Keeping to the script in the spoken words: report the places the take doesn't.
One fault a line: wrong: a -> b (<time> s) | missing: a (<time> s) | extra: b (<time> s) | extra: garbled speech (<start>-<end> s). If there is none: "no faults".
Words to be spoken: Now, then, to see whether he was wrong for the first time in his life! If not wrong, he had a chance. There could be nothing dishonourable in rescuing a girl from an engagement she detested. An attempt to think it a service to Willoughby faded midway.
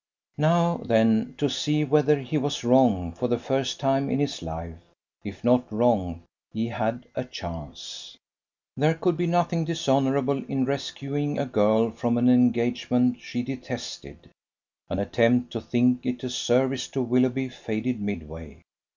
no faults